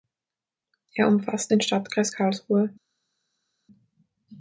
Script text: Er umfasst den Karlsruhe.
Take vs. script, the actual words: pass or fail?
fail